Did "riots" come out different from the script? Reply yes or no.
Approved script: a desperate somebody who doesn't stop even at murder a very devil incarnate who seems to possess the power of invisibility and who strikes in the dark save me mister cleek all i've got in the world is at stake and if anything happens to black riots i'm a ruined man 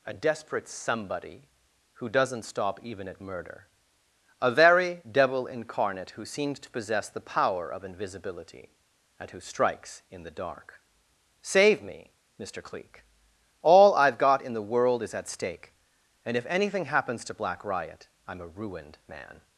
yes